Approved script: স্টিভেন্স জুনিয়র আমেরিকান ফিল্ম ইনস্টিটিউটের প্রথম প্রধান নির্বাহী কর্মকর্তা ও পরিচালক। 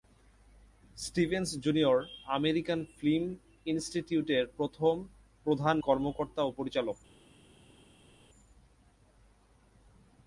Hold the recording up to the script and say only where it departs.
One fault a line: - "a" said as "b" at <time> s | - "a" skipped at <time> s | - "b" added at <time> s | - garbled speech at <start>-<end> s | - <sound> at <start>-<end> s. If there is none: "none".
- "নির্বাহী" skipped at 5.8 s